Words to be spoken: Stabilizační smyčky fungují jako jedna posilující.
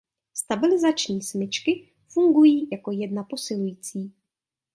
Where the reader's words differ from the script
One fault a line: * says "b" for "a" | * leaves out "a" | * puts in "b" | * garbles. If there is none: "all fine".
all fine